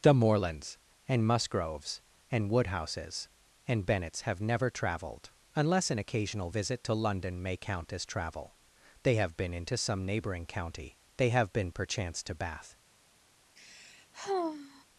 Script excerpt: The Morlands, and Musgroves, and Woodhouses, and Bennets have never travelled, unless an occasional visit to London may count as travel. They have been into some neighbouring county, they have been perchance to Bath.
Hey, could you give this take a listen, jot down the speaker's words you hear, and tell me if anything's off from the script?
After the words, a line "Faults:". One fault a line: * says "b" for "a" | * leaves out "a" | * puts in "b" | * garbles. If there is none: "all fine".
The Morlands, and Musgroves, and Woodhouses, and Bennets have never travelled, unless an occasional visit to London may count as travel. They have been into some neighbouring county, they have been perchance to Bath.
Faults:
all fine